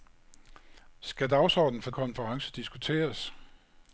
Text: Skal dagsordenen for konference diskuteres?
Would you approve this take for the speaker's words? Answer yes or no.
yes